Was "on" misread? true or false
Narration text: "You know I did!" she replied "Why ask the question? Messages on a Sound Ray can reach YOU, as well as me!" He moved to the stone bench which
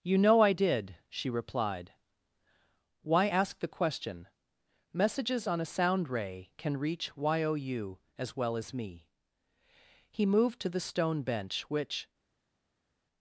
false